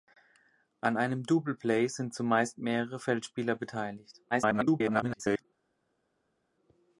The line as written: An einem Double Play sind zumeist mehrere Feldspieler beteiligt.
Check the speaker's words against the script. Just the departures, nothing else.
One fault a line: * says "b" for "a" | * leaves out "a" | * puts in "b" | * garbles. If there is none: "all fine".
* garbles